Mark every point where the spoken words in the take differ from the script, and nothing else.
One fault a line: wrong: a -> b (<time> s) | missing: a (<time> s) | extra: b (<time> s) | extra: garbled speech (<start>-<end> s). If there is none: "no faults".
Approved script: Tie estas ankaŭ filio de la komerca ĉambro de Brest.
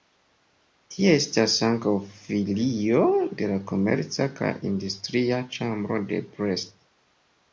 extra: kaj industria (4.4 s)